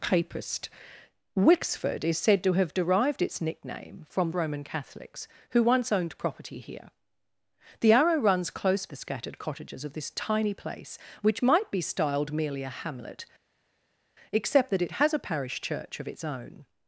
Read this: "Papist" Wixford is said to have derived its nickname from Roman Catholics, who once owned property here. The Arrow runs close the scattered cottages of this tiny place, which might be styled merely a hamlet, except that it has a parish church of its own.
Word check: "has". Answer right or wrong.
right